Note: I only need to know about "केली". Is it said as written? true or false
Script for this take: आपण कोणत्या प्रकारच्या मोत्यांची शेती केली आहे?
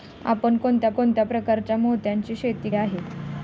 false